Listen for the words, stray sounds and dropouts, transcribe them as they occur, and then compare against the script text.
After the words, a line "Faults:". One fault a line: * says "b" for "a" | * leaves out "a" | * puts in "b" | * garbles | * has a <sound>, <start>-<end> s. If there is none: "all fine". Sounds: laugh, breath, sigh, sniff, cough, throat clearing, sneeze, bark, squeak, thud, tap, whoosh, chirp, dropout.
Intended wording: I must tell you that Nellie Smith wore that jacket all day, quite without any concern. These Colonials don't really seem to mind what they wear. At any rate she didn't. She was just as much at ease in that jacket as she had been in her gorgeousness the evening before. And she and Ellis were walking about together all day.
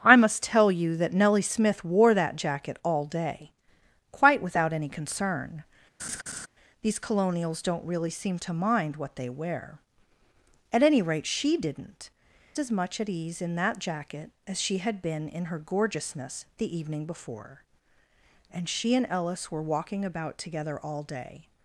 I must tell you that Nellie Smith wore that jacket all day, quite without any concern. These Colonials don't really seem to mind what they wear. At any rate she didn't. As much at ease in that jacket as she had been in her gorgeousness the evening before. And she and Ellis were walking about together all day.
Faults:
* has a laugh, 6.0-6.5 s
* leaves out "She was just"